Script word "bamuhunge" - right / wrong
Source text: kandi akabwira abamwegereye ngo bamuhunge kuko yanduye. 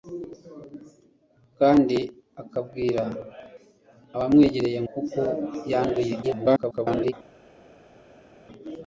wrong